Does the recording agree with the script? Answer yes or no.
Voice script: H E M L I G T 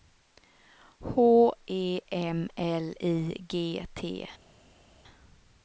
yes